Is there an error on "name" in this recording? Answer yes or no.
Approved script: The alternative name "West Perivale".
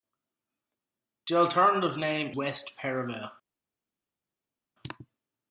no